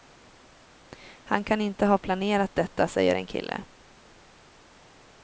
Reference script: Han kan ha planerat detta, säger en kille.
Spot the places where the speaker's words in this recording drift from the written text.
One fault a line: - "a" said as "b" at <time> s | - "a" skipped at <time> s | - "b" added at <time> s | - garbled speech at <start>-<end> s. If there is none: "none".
- "inte" added at 1.6 s